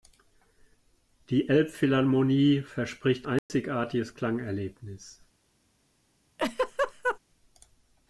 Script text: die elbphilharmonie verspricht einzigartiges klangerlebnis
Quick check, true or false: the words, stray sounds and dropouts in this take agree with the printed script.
false